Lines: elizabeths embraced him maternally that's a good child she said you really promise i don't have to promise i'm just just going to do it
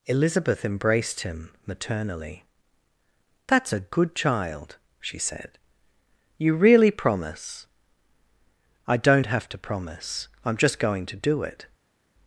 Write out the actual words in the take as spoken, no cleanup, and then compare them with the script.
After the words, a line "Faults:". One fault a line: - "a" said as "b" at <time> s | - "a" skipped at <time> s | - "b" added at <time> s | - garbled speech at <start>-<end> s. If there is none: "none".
elizabeth embraced him maternally that's a good child she said you really promise i don't have to promise i'm just going to do it
Faults:
- "elizabeths" said as "elizabeth" at 0.1 s
- "just" skipped at 10.8 s